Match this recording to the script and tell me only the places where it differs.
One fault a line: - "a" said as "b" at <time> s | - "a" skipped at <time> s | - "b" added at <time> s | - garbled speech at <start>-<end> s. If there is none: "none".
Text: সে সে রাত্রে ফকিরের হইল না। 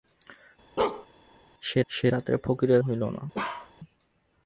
none